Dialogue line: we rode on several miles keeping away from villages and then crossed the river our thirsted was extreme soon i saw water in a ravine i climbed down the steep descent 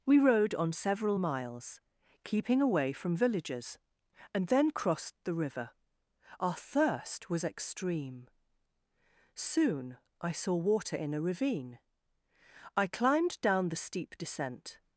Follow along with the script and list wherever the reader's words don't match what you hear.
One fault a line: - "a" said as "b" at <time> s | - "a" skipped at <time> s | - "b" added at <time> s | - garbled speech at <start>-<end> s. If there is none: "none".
- "thirsted" said as "thirst" at 6.5 s